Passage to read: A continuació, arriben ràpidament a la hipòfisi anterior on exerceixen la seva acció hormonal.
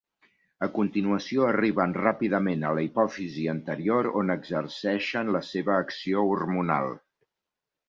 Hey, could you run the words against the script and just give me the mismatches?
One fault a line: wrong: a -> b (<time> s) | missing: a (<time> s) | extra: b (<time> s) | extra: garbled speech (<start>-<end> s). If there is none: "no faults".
no faults